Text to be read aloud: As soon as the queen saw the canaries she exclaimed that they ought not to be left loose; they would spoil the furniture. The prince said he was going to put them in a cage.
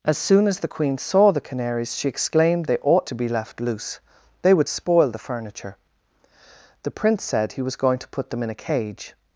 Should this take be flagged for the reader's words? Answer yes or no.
yes